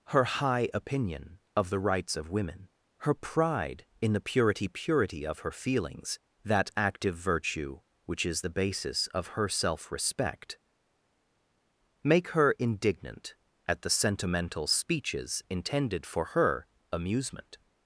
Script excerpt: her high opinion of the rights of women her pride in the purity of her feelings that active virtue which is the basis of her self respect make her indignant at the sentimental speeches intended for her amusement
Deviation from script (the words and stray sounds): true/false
true